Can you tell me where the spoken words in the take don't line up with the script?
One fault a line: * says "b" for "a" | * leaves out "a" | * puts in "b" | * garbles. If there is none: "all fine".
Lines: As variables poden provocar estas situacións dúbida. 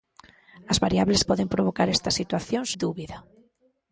all fine